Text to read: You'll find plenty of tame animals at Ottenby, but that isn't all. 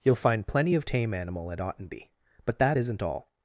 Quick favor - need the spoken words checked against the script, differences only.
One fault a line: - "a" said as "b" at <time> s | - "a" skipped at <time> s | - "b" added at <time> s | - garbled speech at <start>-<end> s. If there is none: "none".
- "animals" said as "animal" at 1.1 s